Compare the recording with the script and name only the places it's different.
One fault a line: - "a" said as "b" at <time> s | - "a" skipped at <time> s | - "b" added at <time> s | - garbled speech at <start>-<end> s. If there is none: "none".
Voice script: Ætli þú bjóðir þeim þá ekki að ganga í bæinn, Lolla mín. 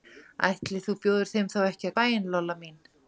- "ganga" skipped at 1.9 s